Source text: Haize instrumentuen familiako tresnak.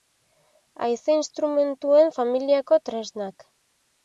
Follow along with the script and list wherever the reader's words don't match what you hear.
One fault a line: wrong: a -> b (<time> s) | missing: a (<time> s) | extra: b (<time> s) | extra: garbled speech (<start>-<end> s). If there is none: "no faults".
no faults